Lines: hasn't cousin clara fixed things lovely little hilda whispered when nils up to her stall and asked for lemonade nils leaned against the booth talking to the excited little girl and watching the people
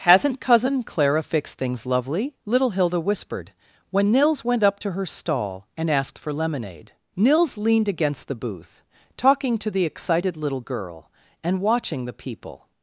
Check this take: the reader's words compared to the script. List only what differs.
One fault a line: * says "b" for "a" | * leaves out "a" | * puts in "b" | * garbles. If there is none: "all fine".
* puts in "went"